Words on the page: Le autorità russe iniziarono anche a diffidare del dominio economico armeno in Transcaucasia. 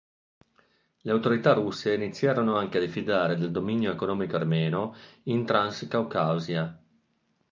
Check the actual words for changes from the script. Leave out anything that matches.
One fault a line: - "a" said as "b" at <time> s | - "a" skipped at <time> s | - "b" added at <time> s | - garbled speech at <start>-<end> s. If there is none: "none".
none